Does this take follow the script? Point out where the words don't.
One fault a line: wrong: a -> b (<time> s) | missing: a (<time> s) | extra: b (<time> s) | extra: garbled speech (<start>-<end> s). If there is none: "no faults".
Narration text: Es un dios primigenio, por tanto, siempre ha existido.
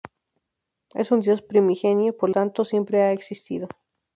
no faults